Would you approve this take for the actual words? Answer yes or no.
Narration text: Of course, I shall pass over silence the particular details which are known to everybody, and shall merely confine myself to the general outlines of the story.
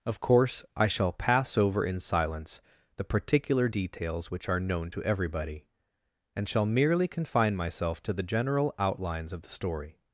no